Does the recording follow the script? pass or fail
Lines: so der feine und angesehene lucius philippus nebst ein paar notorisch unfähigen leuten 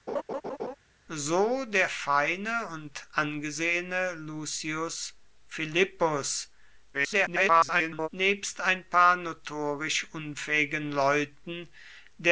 fail